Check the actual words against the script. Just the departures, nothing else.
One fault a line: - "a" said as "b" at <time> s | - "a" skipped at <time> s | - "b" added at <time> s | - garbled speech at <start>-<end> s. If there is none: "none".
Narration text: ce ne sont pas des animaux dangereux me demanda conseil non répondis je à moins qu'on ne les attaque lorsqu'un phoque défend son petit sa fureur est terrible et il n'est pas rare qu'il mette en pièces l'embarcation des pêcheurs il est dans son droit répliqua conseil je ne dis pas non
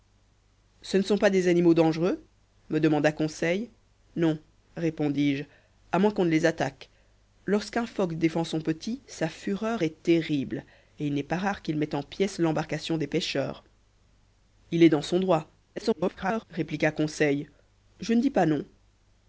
- garbled speech at 15.8-16.4 s